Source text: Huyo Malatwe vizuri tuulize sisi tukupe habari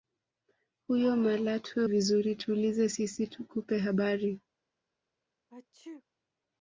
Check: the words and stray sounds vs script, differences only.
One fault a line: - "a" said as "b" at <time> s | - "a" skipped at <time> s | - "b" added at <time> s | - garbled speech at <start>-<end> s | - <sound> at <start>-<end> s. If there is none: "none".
- sneeze at 5.5-6.0 s